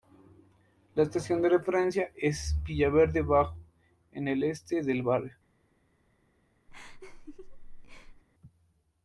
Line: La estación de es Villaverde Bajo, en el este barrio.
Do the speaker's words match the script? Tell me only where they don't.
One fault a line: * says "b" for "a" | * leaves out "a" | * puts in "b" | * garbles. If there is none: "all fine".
* puts in "referencia"
* puts in "del"